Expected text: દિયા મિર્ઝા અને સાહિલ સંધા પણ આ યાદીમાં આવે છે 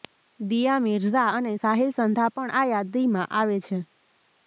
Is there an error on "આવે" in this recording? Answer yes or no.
no